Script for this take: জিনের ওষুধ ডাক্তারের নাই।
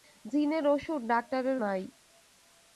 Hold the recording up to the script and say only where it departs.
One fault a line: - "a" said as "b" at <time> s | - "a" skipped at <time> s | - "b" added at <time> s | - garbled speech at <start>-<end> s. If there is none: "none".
none